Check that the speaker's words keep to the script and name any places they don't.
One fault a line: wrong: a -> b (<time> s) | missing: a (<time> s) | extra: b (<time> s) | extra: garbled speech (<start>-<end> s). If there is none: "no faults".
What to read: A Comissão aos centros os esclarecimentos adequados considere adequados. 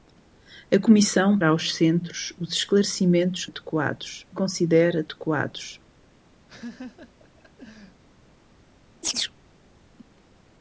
no faults